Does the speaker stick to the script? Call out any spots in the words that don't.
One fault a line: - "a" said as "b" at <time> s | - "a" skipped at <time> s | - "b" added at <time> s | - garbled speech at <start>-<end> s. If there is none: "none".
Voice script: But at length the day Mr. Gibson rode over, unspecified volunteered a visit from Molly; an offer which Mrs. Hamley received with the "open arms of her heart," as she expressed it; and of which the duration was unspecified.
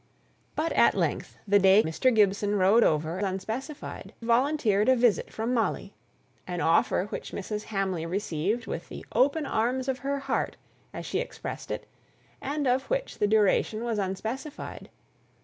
none